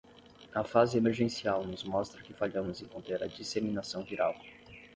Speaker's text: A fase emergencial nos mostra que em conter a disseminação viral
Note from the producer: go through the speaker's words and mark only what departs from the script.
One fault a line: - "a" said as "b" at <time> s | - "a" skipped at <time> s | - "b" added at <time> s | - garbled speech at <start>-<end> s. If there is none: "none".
- "falhamos" added at 2.3 s